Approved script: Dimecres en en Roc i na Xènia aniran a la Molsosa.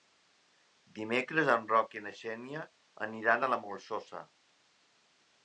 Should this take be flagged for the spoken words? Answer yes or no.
yes